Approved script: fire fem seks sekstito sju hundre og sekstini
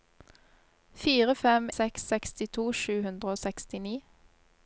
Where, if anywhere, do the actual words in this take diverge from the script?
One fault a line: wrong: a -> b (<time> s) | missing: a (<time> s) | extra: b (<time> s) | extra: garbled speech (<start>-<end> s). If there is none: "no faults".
no faults